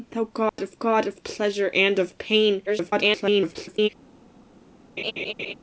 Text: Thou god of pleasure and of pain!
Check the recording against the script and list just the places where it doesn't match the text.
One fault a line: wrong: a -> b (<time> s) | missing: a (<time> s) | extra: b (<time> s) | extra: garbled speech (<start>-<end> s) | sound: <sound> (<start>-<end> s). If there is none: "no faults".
sound: dropout (0.5-0.6 s)
extra: god of (0.8 s)
extra: garbled speech (2.7-3.9 s)
sound: laugh (5.0-5.5 s)